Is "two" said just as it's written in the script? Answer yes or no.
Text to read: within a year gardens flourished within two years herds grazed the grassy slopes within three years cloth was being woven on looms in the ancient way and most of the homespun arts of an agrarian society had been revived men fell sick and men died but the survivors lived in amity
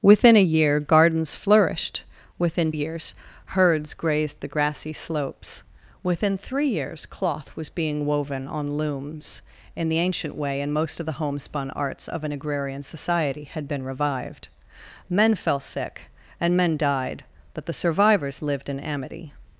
no